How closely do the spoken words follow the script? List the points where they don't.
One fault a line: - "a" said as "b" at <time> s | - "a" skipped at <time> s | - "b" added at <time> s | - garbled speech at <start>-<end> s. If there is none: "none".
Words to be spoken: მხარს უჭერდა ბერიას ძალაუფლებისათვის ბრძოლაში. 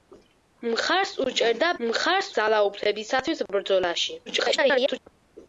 - "ბერიას" said as "მხარს" at 1.9 s
- garbled speech at 4.3-5.0 s